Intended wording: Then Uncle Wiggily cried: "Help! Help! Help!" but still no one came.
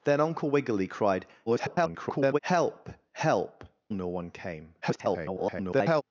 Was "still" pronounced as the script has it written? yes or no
no